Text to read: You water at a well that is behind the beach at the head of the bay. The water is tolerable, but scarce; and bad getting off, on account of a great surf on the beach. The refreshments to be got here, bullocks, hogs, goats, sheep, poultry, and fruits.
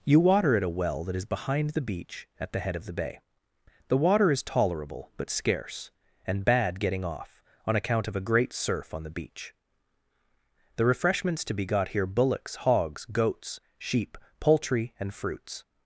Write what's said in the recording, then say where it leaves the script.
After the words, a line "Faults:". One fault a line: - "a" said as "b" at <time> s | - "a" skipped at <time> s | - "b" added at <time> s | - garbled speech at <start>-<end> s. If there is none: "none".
You water at a well that is behind the beach at the head of the bay. The water is tolerable, but scarce; and bad getting off, on account of a great surf on the beach. The refreshments to be got here, bullocks, hogs, goats, sheep, poultry, and fruits.
Faults:
none